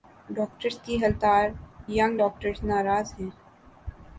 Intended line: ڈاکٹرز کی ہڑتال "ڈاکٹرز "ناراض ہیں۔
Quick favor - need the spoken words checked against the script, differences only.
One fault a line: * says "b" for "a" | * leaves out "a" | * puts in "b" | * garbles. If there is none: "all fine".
* puts in "ینگ"